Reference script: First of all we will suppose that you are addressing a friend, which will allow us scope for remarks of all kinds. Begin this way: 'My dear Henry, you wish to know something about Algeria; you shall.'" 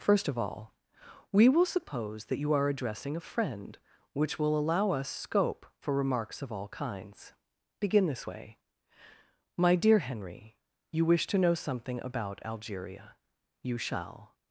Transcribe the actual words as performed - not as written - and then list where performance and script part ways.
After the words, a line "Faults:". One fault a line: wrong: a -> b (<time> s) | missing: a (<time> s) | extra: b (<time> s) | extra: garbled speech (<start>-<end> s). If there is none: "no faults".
First of all we will suppose that you are addressing a friend, which will allow us scope for remarks of all kinds. Begin this way: 'My dear Henry, you wish to know something about Algeria; you shall.'"
Faults:
no faults